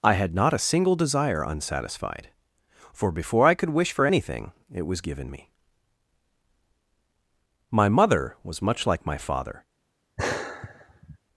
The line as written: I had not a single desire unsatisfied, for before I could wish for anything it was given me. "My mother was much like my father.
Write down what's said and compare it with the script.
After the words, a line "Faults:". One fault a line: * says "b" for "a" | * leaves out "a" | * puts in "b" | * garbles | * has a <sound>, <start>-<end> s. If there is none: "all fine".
I had not a single desire unsatisfied, for before I could wish for anything it was given me. "My mother was much like my father.
Faults:
* has a sigh, 10.2-11.2 s